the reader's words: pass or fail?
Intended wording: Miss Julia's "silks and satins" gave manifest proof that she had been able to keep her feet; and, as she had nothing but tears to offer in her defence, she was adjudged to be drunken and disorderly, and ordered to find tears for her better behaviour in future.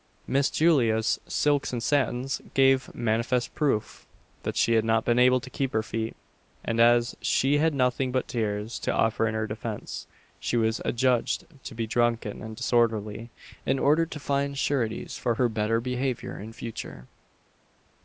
fail